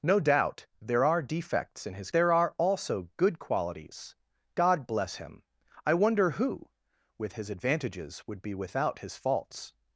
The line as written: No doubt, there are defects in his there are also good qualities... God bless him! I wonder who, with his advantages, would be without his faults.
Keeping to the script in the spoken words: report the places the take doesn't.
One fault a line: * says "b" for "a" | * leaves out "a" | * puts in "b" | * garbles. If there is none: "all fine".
all fine